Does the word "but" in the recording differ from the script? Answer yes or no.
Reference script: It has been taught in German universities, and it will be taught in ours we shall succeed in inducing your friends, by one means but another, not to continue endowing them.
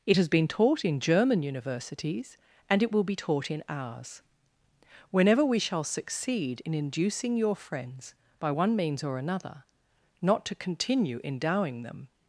yes